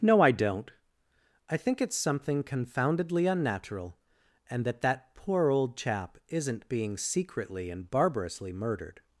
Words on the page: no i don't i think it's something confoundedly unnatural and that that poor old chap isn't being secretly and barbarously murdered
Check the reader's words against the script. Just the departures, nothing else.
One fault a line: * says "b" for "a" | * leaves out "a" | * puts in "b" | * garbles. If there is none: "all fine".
all fine